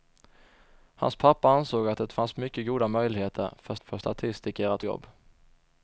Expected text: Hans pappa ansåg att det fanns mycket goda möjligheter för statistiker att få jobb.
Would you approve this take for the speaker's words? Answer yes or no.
no